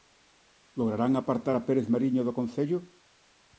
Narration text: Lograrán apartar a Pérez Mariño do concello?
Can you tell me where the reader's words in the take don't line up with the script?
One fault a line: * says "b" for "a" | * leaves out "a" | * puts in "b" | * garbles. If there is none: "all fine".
all fine